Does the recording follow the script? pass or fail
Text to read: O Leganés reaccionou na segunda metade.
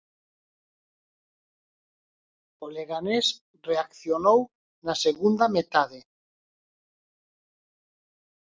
pass